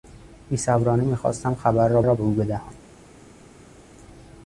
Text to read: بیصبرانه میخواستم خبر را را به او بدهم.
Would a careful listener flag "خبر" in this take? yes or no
no